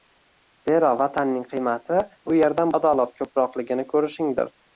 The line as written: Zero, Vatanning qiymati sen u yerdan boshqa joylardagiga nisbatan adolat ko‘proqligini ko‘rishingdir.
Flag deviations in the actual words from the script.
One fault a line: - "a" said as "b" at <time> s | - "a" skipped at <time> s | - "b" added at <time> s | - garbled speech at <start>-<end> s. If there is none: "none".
- "sen" skipped at 2.0 s
- "boshqa joylardagiga nisbatan" skipped at 2.7 s